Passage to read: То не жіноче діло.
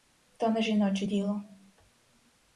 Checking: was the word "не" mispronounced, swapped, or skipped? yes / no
no